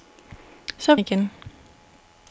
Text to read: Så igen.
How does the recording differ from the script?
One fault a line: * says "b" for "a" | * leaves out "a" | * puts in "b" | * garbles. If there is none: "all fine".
all fine